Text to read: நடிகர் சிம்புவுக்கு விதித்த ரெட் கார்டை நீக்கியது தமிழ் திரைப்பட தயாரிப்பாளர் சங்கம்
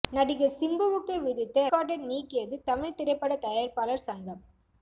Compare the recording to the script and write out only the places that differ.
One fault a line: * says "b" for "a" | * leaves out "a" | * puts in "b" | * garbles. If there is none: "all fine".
* leaves out "ரெட்"